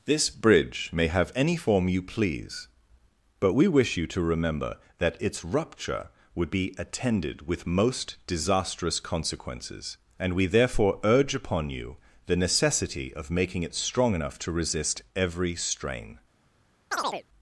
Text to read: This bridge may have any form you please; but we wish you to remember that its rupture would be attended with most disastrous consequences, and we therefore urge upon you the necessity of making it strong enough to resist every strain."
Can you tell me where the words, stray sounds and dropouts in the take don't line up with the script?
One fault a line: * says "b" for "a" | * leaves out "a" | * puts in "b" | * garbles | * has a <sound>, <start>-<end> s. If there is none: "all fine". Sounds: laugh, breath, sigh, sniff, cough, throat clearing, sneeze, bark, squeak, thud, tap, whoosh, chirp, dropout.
* has a chirp, 16.9-17.2 s